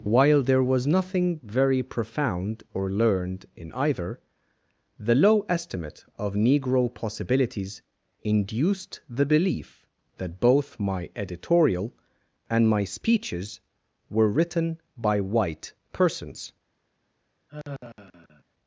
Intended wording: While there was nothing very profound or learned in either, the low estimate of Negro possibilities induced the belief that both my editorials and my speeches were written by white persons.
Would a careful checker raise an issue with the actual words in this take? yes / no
yes